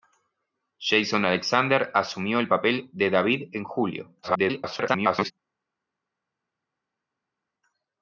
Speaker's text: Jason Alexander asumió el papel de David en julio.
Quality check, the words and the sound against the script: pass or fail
fail